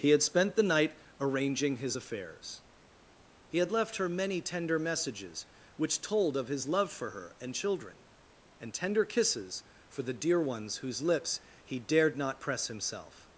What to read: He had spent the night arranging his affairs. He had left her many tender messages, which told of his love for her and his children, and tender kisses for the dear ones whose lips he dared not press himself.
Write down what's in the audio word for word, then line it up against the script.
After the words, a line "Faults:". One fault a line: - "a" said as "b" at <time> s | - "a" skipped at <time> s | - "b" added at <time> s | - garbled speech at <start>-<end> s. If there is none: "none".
He had spent the night arranging his affairs. He had left her many tender messages, which told of his love for her and children, and tender kisses for the dear ones whose lips he dared not press himself.
Faults:
- "his" skipped at 7.5 s